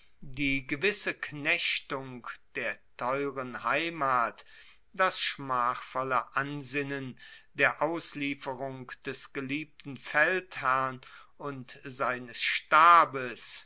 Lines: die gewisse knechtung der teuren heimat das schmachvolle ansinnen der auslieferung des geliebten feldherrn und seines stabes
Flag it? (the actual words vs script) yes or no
no